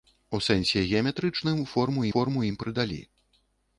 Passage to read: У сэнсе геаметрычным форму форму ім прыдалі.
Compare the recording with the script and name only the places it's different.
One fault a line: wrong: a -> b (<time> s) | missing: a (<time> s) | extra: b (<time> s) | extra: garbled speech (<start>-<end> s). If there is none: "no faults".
no faults